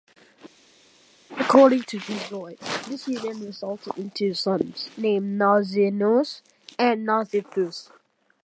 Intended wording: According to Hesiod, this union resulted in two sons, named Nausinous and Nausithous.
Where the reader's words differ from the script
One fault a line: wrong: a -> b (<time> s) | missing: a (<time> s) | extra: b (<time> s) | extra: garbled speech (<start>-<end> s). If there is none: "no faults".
no faults